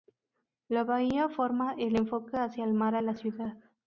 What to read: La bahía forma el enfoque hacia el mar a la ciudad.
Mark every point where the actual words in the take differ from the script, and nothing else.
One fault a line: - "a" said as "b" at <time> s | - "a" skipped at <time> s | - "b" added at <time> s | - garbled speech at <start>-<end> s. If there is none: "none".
none